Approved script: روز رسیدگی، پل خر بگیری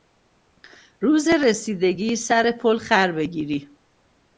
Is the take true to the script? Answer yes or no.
no